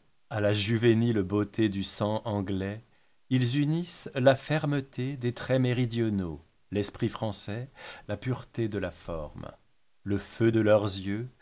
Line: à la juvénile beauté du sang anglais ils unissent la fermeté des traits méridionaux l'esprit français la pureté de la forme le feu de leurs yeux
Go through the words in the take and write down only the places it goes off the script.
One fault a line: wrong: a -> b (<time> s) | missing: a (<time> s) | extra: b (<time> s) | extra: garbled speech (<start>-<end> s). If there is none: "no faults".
no faults